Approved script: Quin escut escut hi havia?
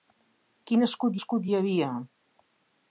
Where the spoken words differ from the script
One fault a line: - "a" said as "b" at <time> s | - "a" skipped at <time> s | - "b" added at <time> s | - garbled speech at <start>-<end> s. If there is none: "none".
none